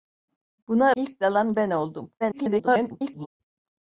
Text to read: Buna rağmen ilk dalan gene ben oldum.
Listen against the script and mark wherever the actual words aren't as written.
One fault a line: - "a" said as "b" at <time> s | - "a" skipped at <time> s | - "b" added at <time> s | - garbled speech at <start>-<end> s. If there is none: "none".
- "rağmen" skipped at 0.9 s
- "gene" skipped at 1.5 s
- garbled speech at 2.2-3.3 s